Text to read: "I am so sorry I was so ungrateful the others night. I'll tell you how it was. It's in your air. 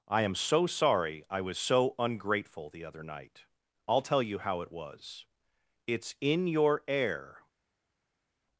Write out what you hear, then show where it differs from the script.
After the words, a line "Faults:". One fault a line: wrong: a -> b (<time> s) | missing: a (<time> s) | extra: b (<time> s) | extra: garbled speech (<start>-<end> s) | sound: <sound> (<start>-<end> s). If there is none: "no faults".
"I am so sorry I was so ungrateful the other night. I'll tell you how it was. It's in your air.
Faults:
wrong: others -> other (2.9 s)